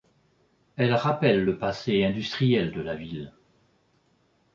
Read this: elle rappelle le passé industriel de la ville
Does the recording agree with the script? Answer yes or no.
yes